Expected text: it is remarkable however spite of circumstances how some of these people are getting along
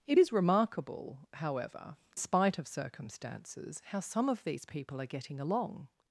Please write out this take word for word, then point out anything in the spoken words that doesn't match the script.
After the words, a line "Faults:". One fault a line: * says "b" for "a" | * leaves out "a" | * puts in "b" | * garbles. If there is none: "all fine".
it is remarkable however spite of circumstances how some of these people are getting along
Faults:
all fine